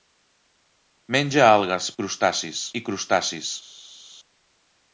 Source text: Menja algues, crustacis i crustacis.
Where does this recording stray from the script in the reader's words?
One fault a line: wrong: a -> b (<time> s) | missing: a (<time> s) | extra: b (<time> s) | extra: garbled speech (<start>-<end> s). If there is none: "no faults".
no faults